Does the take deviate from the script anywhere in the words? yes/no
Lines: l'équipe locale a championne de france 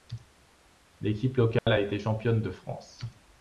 yes